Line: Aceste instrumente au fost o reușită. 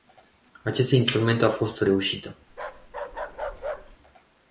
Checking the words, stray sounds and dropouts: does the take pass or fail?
fail